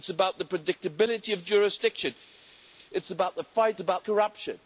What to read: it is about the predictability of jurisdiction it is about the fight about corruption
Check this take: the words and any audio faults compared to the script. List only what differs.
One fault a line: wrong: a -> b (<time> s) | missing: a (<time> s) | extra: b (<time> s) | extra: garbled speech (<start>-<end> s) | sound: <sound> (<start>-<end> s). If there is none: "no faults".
no faults